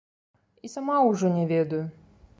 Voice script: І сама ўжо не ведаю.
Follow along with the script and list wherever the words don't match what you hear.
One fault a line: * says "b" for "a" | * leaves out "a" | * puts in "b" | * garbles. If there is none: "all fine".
all fine